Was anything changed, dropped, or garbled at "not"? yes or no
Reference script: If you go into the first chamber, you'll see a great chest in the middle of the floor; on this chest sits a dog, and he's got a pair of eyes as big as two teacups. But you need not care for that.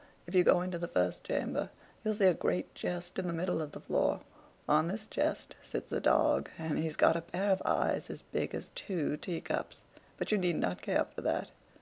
no